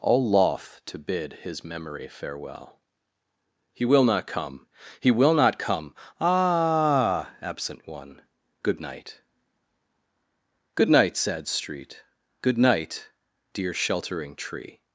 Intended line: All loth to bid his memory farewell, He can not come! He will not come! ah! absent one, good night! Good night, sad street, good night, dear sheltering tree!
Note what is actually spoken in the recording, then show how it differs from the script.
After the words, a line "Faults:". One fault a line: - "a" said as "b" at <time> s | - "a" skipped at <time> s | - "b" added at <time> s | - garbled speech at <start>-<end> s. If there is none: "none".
All loth to bid his memory farewell, He will not come! He will not come! ah! absent one, good night! Good night, sad street, good night, dear sheltering tree!
Faults:
- "can" said as "will" at 3.8 s